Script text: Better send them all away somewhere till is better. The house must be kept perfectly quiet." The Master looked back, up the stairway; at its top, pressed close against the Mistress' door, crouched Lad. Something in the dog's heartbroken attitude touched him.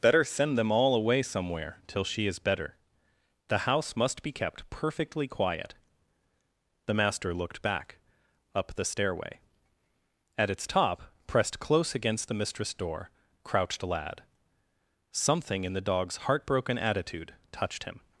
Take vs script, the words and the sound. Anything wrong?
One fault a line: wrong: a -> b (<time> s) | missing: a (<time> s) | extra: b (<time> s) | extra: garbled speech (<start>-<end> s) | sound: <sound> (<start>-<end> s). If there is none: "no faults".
extra: she (2.0 s)